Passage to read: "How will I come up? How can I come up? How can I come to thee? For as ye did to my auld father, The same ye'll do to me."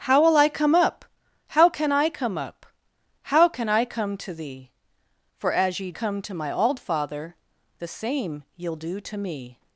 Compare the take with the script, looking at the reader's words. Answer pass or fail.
fail